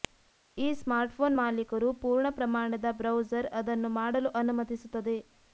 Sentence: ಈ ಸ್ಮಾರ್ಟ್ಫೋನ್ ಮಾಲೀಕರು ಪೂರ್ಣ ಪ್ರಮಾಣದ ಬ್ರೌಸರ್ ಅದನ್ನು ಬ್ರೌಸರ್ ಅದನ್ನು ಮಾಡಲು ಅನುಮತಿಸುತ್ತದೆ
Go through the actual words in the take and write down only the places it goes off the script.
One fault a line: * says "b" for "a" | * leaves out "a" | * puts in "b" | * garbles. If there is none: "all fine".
* leaves out "ಬ್ರೌಸರ್ ಅದನ್ನು"